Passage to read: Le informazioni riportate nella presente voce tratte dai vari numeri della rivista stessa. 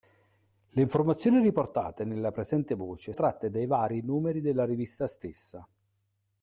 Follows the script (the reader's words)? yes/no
yes